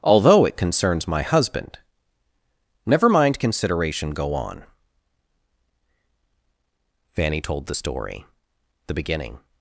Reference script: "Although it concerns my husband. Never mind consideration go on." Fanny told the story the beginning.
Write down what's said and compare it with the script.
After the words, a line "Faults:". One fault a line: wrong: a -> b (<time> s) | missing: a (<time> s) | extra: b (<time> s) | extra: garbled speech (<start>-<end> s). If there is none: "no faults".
"Although it concerns my husband. Never mind consideration go on." Fanny told the story the beginning.
Faults:
no faults